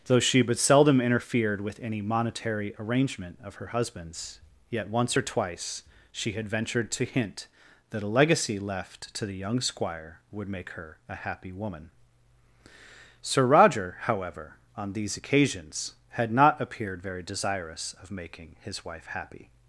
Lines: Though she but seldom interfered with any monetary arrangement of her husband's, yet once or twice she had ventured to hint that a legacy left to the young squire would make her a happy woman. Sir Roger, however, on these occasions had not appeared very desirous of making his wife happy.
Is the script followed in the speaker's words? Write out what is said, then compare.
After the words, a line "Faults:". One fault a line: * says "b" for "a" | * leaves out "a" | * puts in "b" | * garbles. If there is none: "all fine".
Though she but seldom interfered with any monetary arrangement of her husband's, yet once or twice she had ventured to hint that a legacy left to the young squire would make her a happy woman. Sir Roger, however, on these occasions had not appeared very desirous of making his wife happy.
Faults:
all fine